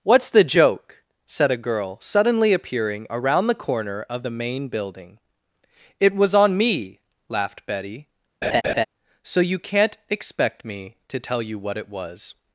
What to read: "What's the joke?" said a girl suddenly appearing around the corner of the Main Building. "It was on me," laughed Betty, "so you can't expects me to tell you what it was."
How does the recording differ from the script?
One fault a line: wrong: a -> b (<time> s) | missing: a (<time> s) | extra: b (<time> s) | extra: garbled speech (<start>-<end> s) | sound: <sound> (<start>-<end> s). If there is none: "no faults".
sound: laugh (8.4-8.8 s)
wrong: expects -> expect (10.1 s)